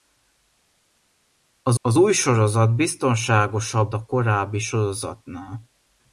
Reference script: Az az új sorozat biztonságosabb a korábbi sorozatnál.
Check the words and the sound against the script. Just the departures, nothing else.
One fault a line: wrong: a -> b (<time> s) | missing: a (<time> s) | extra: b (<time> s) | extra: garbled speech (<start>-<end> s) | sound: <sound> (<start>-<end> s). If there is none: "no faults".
no faults